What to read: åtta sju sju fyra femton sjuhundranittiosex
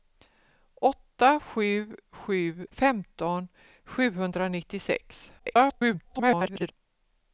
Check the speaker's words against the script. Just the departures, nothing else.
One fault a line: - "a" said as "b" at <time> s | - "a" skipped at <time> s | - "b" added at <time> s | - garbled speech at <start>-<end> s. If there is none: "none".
- "fyra" skipped at 2.7 s
- garbled speech at 5.4-6.7 s